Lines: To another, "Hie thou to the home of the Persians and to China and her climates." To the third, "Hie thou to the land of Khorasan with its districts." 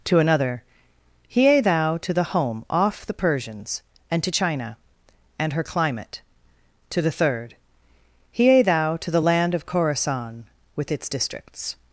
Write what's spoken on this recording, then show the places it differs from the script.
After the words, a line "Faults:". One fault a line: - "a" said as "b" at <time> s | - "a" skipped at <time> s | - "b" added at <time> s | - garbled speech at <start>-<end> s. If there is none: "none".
To another, "Hie thou to the home off the Persians and to China and her climate." To the third, "Hie thou to the land of Khorasan with its districts."
Faults:
- "of" said as "off" at 2.7 s
- "climates" said as "climate" at 5.6 s